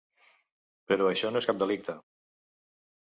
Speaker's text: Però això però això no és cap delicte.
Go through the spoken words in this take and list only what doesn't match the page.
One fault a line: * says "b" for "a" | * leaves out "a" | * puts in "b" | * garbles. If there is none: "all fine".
* leaves out "però això"